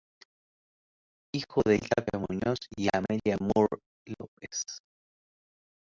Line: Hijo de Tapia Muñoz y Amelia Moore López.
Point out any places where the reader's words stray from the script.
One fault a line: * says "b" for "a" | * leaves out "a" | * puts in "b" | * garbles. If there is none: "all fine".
all fine